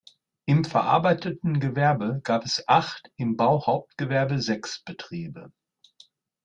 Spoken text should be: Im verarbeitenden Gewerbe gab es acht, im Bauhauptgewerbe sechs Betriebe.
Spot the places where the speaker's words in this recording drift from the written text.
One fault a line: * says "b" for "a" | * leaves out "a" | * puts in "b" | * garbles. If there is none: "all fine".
all fine